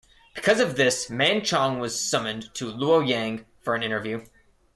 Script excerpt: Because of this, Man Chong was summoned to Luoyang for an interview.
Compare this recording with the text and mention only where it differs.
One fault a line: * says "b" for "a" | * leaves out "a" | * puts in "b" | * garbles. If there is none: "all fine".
all fine